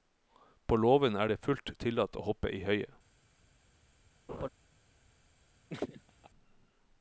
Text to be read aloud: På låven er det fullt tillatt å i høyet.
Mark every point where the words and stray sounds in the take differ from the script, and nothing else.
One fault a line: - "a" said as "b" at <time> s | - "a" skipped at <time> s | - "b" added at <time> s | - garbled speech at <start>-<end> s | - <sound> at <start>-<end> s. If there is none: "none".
- "hoppe" added at 2.3 s
- laugh at 4.3-4.5 s
- laugh at 5.7-6.3 s